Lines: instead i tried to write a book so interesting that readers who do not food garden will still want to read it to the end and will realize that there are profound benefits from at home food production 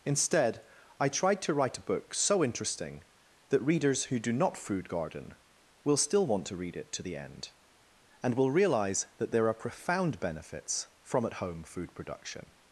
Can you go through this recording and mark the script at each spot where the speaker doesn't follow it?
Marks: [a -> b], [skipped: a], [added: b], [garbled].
instead i tried to write a book so interesting that readers who do not food garden will still want to read it to the end and will realize that there are profound benefits from at home food production